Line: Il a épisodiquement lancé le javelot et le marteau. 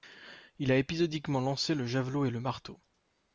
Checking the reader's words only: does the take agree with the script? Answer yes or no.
yes